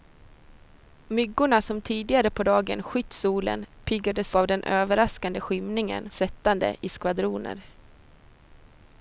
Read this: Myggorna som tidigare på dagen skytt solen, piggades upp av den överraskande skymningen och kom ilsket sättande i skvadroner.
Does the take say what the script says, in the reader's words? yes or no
no